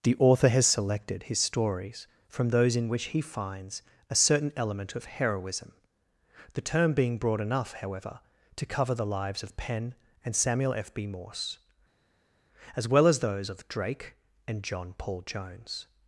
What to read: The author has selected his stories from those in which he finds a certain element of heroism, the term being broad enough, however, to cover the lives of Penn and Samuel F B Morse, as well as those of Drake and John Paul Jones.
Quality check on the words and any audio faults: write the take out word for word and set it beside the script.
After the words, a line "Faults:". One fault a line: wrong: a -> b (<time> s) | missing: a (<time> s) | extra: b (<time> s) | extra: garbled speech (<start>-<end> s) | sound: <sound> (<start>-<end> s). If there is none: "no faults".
The author has selected his stories from those in which he finds a certain element of heroism, the term being broad enough, however, to cover the lives of Penn and Samuel F B Morse, as well as those of Drake and John Paul Jones.
Faults:
no faults